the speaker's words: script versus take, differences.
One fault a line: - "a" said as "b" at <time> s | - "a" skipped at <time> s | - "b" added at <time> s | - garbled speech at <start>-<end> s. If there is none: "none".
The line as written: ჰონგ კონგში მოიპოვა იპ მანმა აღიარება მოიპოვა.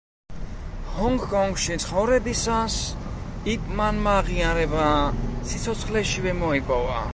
- "მოიპოვა" said as "ცხოვრებისას" at 1.8 s
- "სიცოცხლეშივე" added at 5.5 s